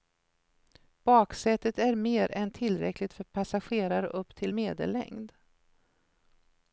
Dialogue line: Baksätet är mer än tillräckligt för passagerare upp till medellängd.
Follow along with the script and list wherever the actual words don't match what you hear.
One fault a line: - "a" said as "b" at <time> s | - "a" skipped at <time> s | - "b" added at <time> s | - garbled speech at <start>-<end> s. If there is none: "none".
none